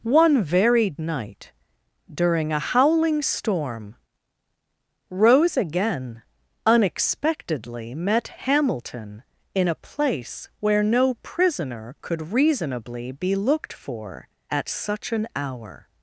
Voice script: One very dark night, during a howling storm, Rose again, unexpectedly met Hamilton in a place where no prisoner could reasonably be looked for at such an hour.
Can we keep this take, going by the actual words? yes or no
no